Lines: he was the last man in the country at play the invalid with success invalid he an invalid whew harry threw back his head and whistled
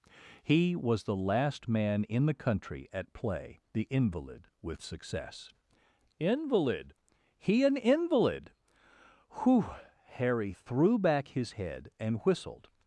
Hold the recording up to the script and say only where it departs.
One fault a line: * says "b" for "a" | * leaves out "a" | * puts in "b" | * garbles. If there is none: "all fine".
all fine